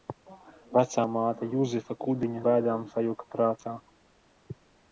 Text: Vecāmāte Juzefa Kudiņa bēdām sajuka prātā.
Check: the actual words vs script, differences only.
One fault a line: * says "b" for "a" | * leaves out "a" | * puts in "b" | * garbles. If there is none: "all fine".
all fine